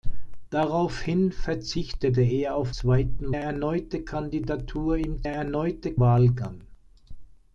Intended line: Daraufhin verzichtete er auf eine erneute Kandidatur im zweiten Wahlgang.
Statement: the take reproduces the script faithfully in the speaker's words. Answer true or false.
false